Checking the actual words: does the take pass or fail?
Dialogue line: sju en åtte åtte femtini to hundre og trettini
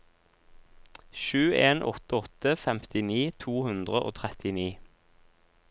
pass